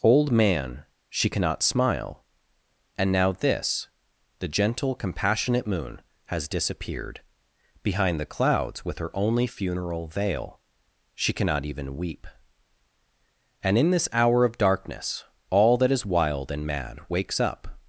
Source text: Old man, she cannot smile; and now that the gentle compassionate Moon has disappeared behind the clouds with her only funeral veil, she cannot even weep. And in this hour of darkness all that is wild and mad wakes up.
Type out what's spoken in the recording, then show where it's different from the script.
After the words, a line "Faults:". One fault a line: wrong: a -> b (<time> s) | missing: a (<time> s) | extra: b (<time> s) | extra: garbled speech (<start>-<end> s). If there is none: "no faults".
Old man, she cannot smile; and now this the gentle compassionate Moon has disappeared behind the clouds with her only funeral veil, she cannot even weep. And in this hour of darkness all that is wild and mad wakes up.
Faults:
wrong: that -> this (3.3 s)